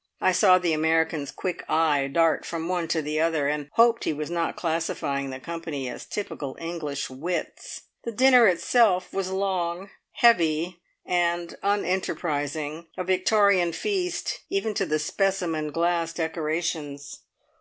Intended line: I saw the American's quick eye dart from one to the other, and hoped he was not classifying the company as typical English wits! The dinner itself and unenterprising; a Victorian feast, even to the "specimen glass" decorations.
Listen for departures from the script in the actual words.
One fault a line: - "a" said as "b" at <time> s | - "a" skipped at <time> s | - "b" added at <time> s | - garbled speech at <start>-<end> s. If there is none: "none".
- "was long heavy" added at 9.1 s